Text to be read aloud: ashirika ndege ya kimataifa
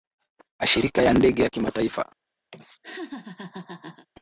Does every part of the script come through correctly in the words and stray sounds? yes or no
no